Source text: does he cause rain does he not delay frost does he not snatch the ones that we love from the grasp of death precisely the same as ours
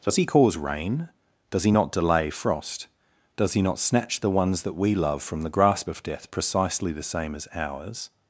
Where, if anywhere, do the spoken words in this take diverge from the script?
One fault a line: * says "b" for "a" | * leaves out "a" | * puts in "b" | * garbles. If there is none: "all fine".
all fine